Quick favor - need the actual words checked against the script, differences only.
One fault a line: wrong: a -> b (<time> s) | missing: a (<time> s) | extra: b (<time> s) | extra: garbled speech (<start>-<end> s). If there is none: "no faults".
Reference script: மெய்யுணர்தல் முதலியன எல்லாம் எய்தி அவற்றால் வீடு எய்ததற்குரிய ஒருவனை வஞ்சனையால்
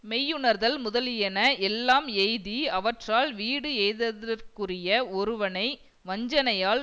no faults